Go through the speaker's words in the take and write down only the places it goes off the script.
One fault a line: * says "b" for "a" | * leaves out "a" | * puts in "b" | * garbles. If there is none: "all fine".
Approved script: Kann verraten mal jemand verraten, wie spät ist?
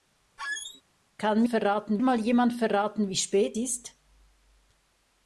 all fine